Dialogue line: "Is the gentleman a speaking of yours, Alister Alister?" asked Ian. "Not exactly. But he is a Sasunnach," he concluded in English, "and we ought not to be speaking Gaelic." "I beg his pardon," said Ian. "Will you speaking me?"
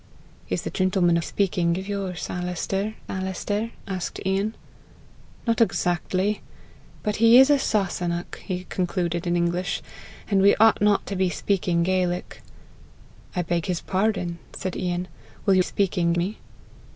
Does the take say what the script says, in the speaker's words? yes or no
yes